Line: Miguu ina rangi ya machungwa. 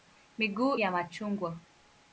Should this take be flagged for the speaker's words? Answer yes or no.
yes